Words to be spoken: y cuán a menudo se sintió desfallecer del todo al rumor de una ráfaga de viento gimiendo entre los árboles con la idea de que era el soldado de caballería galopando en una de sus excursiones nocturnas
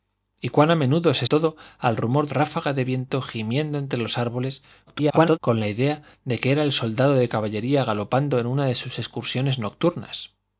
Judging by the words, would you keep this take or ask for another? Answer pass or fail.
fail